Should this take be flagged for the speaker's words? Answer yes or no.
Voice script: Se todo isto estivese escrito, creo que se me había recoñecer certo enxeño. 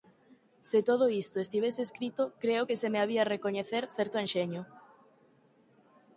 no